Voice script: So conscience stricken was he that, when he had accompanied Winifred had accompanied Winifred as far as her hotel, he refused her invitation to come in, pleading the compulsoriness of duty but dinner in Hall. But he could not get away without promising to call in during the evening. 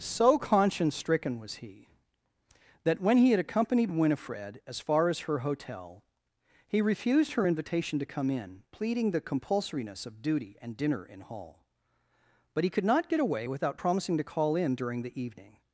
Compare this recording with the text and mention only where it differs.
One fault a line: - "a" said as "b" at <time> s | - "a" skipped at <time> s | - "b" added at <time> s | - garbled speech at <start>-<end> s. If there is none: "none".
- "had accompanied Winifred" skipped at 4.6 s
- "but" said as "and" at 10.6 s